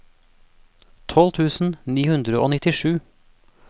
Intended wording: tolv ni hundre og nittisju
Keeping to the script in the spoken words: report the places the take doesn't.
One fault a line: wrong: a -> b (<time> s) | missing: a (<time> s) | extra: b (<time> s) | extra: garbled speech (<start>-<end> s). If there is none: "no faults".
extra: tusen (1.4 s)